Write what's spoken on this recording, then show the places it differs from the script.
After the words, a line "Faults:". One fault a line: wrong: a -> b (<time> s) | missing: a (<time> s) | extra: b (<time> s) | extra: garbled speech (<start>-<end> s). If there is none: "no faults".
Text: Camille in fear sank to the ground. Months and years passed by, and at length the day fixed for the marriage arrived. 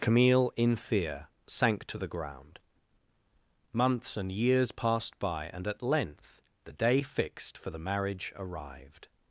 Camille in fear sank to the ground. Months and years passed by, and at length the day fixed for the marriage arrived.
Faults:
no faults